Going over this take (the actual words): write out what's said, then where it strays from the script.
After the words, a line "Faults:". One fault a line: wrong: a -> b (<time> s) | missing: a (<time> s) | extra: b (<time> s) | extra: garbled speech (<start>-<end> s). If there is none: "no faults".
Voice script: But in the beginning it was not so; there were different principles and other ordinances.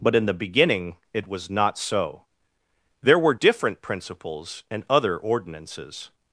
But in the beginning it was not so; there were different principles and other ordinances.
Faults:
no faults